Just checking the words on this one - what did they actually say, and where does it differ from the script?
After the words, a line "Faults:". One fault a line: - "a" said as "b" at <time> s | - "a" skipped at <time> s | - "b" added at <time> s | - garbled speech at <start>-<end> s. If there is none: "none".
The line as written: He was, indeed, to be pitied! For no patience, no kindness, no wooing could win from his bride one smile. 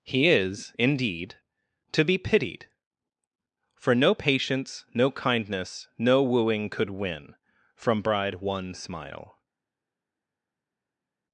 He is, indeed, to be pitied! For no patience, no kindness, no wooing could win from bride one smile.
Faults:
- "was" said as "is" at 0.3 s
- "his" skipped at 8.0 s